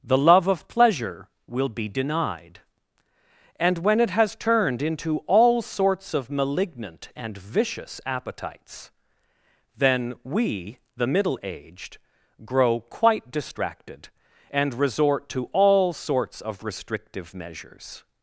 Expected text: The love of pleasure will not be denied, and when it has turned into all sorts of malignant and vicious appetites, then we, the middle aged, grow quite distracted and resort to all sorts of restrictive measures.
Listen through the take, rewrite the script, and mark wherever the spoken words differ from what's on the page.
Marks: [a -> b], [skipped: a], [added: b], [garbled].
The love of pleasure will [skipped: not] be denied, and when it has turned into all sorts of malignant and vicious appetites, then we, the middle aged, grow quite distracted and resort to all sorts of restrictive measures.